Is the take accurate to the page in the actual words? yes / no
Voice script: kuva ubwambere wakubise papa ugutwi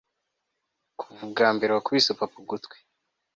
yes